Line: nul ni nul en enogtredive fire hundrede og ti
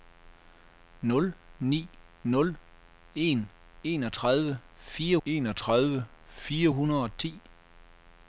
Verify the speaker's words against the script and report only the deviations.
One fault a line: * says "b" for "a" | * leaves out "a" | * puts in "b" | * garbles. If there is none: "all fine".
* puts in "enogtredive fire"